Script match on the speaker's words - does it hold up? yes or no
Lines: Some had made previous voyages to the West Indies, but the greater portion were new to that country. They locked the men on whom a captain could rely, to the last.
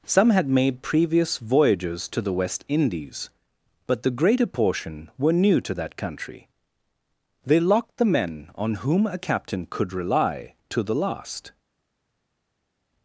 yes